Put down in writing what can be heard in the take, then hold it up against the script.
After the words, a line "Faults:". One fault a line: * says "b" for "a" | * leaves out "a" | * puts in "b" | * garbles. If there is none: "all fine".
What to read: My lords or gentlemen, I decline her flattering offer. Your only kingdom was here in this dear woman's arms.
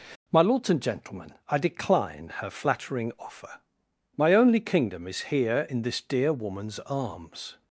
My lords and gentlemen, I decline her flattering offer. My only kingdom is here in this dear woman's arms.
Faults:
* says "and" for "or"
* says "My" for "Your"
* says "is" for "was"